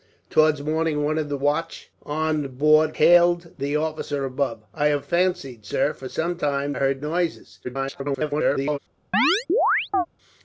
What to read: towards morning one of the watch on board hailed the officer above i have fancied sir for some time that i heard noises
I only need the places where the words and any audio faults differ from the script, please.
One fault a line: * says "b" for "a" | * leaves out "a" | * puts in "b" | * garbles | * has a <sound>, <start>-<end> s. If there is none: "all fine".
* leaves out "that"
* garbles
* has a chirp, 9.1-10.1 s